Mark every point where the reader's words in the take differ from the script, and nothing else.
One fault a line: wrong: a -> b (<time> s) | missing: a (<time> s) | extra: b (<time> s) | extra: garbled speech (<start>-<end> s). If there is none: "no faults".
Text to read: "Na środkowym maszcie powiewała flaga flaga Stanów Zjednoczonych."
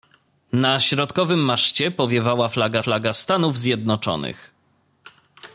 no faults